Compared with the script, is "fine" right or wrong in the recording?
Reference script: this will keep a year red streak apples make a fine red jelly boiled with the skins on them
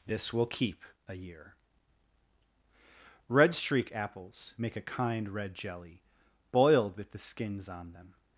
wrong